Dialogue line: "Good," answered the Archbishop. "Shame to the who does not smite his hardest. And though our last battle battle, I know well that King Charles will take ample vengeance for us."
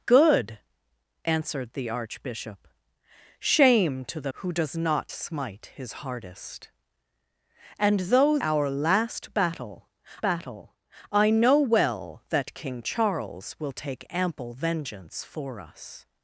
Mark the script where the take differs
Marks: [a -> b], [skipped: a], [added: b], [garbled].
"Good," answered the Archbishop. "Shame to the who does not smite his hardest. And though our last battle battle, I know well that King Charles will take ample vengeance for us."